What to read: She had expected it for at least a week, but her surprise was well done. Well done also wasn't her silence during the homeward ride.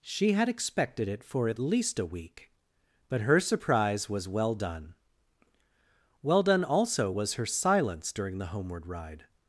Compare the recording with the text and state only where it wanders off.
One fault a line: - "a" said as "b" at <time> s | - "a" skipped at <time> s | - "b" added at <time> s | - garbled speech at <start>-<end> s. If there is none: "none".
- "wasn't" said as "was" at 7.1 s